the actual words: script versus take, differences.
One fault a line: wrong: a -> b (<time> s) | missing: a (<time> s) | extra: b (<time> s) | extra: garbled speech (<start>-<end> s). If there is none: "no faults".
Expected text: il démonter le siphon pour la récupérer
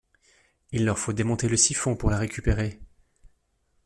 extra: leur faut (0.8 s)